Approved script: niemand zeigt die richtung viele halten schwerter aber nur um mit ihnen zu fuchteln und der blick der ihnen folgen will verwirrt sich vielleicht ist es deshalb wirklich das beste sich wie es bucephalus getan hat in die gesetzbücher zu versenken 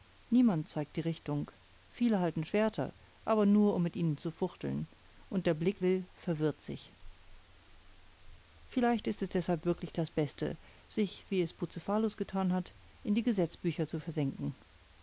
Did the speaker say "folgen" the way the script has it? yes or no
no